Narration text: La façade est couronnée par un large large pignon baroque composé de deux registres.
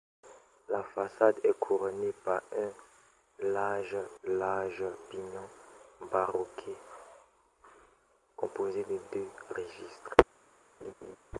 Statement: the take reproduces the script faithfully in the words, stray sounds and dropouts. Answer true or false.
false